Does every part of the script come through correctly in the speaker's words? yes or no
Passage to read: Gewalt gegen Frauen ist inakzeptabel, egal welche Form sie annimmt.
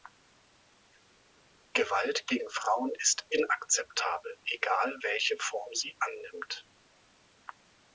yes